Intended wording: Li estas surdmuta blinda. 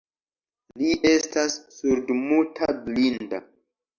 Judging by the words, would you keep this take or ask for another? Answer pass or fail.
pass